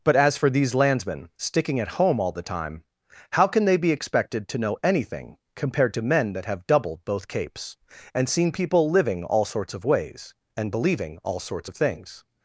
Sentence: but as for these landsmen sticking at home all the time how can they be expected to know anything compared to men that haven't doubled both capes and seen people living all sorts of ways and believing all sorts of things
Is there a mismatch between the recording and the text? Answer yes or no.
yes